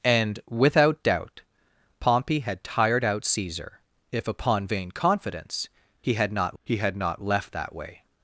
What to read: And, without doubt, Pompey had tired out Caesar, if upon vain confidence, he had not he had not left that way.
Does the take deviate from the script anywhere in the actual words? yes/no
no